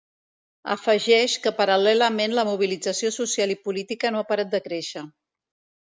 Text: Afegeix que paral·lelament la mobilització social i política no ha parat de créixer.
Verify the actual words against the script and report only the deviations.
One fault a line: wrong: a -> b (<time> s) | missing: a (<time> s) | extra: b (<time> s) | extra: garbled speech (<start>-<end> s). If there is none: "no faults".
no faults